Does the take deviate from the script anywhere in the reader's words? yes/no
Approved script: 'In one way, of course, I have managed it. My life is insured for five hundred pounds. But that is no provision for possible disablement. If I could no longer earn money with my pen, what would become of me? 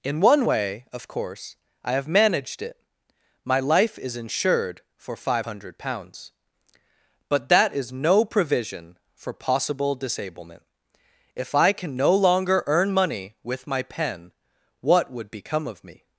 yes